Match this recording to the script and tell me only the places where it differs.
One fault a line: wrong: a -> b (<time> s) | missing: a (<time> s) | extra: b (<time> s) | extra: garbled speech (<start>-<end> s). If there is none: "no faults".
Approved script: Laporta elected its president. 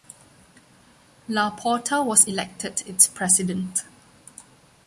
extra: was (2.0 s)